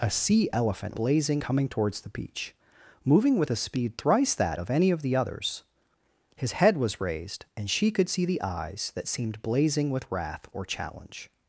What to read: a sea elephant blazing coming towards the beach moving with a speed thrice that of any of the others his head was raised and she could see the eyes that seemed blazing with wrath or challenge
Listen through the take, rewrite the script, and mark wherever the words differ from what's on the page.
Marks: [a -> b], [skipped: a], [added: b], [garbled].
a sea elephant blazing coming towards the beach moving with a speed thrice that of any of the others his head was raised and she could see the eyes that seemed blazing with wrath or challenge